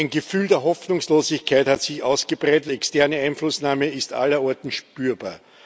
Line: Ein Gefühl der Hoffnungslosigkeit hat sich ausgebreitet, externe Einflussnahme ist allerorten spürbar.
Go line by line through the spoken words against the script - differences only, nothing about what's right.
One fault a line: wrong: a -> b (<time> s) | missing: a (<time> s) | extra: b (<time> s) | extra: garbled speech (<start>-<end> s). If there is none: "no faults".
no faults